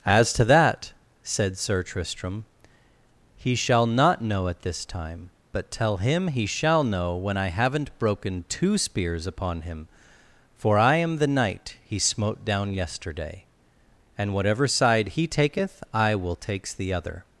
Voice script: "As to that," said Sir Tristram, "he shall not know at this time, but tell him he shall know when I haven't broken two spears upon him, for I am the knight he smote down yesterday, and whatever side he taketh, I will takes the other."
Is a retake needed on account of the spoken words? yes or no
no